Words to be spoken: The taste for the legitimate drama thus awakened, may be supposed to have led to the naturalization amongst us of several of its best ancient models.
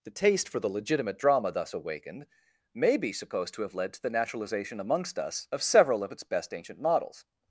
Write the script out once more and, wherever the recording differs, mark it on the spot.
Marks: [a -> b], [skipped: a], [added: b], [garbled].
The taste for the legitimate drama thus awakened, may be supposed to have led to the naturalization amongst us of several of its best ancient models.